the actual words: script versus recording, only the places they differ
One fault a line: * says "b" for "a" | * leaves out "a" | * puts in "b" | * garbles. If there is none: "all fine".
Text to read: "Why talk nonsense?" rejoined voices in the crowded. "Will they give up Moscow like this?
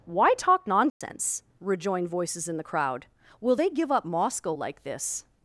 * says "crowd" for "crowded"